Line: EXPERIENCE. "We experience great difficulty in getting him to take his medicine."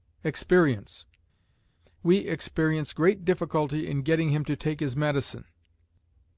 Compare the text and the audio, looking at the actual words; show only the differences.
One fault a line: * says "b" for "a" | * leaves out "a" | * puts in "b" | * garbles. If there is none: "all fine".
all fine